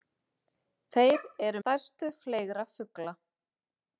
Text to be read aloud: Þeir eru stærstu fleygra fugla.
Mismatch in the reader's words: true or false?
false